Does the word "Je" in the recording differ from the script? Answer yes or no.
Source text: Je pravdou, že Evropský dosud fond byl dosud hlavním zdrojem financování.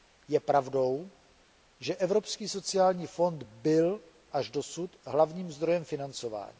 no